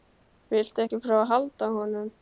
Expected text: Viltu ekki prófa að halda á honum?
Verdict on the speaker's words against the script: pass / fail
pass